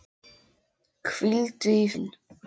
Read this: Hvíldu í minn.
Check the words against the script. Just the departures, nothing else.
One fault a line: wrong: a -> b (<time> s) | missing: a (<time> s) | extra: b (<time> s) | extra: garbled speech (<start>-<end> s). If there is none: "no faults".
no faults